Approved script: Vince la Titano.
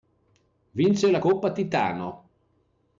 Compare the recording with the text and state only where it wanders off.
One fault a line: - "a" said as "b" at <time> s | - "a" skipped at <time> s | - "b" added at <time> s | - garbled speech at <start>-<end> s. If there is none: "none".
- "Coppa" added at 1.2 s